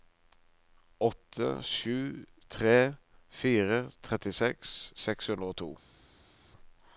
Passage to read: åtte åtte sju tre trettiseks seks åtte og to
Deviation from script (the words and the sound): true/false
true